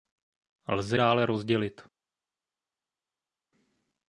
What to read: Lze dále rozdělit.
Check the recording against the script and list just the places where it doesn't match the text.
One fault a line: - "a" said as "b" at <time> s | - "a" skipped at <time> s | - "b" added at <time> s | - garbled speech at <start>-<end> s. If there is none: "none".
none